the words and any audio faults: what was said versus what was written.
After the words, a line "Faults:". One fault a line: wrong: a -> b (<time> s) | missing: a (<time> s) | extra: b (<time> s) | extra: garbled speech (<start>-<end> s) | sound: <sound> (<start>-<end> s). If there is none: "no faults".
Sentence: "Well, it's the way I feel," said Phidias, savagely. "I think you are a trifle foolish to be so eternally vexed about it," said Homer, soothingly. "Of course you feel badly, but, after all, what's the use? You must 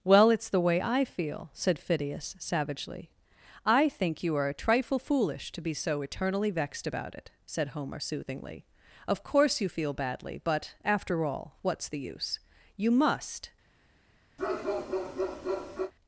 "Well, it's the way I feel," said Phidias, savagely. "I think you are a trifle foolish to be so eternally vexed about it," said Homer, soothingly. "Of course you feel badly, but, after all, what's the use? You must
Faults:
sound: bark (14.4-15.9 s)